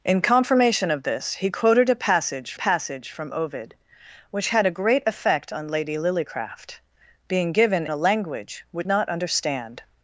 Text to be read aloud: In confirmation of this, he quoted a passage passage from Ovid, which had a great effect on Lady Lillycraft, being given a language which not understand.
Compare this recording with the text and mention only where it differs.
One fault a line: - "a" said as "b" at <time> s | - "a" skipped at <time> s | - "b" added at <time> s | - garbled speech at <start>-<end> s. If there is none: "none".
none